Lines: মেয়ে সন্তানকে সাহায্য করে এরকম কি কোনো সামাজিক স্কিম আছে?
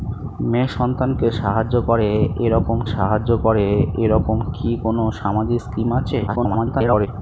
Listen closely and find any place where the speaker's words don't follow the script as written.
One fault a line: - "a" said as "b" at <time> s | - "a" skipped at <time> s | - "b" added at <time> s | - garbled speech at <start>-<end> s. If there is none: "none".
- "সাহায্য করে এরকম" added at 2.9 s
- garbled speech at 6.3-7.1 s